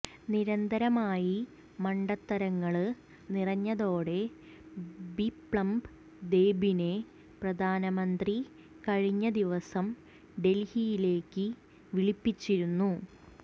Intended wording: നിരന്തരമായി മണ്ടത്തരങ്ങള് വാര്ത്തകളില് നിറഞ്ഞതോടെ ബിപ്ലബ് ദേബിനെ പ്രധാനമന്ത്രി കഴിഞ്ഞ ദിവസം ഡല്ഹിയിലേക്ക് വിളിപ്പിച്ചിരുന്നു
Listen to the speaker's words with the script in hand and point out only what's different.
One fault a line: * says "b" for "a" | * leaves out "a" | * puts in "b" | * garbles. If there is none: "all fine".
* leaves out "വാര്ത്തകളില്"